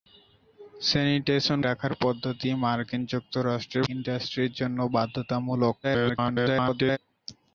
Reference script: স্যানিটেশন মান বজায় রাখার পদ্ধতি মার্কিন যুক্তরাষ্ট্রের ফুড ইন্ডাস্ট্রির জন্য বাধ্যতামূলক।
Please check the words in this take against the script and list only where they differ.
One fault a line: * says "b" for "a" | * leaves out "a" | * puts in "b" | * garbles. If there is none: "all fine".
* leaves out "মান বজায়"
* leaves out "ফুড"
* garbles